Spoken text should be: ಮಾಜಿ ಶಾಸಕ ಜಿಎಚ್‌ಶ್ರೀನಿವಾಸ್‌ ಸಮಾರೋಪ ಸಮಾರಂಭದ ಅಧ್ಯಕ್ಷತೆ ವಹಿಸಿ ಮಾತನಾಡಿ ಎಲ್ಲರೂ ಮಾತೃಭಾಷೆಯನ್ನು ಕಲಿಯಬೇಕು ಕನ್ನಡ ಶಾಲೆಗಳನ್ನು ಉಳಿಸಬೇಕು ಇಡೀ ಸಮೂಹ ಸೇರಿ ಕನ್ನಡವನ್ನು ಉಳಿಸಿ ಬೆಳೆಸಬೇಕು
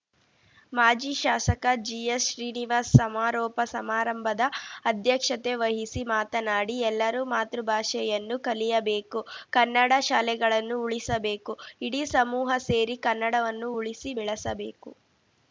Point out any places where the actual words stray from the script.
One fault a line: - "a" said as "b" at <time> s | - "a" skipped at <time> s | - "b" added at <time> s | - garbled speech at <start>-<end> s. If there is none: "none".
none